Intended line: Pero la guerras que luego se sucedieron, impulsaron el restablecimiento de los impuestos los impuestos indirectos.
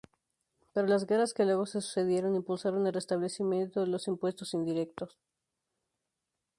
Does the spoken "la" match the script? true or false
false